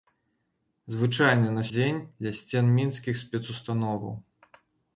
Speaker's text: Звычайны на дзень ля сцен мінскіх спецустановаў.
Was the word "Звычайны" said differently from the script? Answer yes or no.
no